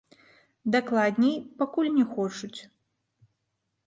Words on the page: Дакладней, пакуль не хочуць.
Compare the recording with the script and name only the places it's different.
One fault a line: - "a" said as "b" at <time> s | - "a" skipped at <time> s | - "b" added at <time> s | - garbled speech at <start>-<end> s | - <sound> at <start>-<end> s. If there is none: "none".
none